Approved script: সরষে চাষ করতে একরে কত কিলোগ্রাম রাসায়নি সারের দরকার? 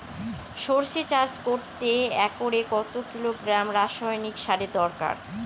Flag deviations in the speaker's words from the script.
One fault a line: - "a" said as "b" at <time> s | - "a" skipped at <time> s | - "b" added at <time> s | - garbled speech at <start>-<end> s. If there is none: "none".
none